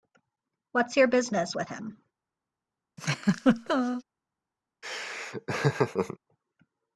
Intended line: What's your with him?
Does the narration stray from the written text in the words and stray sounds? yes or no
yes